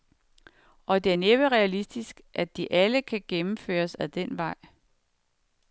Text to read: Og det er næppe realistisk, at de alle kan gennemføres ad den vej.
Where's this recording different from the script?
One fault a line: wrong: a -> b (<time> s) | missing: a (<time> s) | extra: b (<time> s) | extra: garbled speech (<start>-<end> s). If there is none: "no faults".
no faults